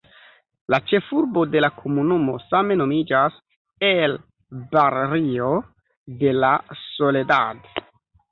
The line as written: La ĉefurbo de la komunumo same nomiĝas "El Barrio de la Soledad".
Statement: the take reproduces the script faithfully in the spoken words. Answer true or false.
true